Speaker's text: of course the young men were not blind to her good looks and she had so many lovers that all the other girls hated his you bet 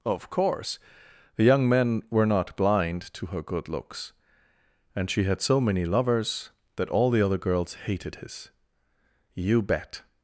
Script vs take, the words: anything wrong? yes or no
no